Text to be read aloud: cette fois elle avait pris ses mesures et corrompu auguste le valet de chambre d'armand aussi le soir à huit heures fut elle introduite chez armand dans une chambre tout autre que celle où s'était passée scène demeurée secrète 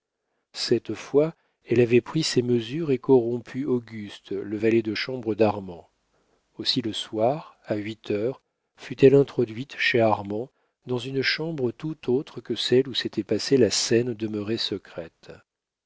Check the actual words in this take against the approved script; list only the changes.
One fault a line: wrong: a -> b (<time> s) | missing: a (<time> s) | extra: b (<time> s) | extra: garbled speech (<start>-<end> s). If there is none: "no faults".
extra: la (13.6 s)